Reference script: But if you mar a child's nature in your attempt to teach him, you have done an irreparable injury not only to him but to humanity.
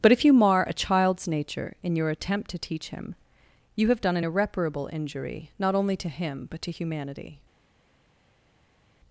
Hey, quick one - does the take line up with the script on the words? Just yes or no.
yes